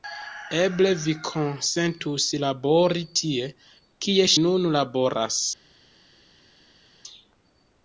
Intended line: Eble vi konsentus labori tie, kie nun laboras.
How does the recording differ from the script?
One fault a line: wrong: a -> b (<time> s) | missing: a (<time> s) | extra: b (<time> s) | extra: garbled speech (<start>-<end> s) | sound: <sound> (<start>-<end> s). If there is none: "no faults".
no faults